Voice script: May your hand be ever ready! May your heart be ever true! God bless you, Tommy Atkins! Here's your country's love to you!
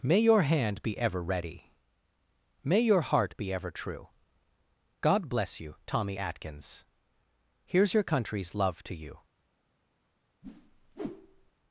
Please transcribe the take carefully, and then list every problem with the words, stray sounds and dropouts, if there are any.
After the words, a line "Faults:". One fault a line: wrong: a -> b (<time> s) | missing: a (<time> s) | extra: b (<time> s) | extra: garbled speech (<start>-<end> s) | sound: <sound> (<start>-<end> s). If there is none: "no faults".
May your hand be ever ready! May your heart be ever true! God bless you, Tommy Atkins! Here's your country's love to you!
Faults:
sound: whoosh (10.4-11.5 s)